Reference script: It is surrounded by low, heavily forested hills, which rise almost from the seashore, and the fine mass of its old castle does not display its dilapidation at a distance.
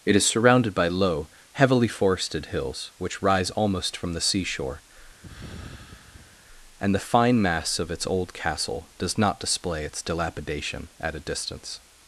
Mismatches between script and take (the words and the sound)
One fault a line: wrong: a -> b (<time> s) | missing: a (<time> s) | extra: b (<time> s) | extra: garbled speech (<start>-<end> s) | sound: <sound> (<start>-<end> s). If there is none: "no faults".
sound: sigh (5.2-6.5 s)